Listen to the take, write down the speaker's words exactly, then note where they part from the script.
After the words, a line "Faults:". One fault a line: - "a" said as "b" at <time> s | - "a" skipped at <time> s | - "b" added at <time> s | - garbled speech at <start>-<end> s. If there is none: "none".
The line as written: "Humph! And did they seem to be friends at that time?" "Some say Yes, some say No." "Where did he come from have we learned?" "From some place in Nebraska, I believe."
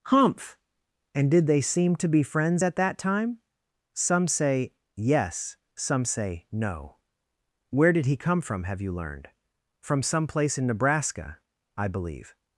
"Humph! And did they seem to be friends at that time?" "Some say Yes, some say No." "Where did he come from have you learned?" "From some place in Nebraska, I believe."
Faults:
- "we" said as "you" at 8.8 s